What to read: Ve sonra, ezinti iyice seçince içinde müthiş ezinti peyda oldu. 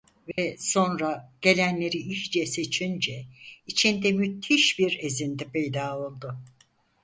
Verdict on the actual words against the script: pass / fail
fail